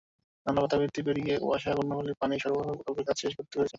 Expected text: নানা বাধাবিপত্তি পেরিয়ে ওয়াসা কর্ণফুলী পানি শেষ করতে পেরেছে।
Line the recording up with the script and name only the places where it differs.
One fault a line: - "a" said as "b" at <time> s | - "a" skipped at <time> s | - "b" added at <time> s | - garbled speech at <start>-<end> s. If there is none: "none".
- "সরবরাহ প্রকল্পের কাজ" added at 2.4 s